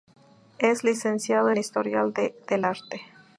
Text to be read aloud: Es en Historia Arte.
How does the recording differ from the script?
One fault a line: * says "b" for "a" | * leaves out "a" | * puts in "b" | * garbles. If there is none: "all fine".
* puts in "licenciado"
* puts in "del"